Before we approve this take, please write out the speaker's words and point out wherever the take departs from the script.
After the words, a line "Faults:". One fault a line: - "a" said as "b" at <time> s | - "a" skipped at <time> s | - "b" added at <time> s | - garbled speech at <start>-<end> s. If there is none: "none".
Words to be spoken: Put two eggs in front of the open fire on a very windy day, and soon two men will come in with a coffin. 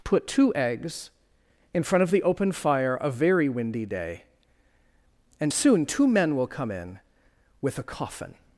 Put two eggs in front of the open fire a very windy day, and soon two men will come in with a coffin.
Faults:
- "on" skipped at 3.0 s